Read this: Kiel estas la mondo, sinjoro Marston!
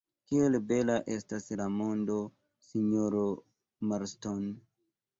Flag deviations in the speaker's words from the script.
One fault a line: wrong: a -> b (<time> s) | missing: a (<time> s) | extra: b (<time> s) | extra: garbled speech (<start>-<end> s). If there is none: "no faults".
extra: bela (0.7 s)